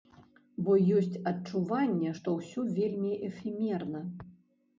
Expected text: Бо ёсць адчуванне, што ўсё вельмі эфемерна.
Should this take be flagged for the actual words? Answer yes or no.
no